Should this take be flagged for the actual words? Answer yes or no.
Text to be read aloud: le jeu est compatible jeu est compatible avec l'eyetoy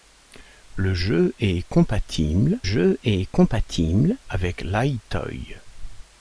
no